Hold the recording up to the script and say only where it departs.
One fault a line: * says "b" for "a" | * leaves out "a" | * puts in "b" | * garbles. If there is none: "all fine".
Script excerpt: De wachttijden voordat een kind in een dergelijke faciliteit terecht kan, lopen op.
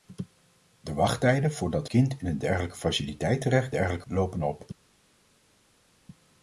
* leaves out "een"
* says "dergelijke" for "kan"